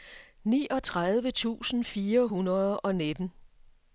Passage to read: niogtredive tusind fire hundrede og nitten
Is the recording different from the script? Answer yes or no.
no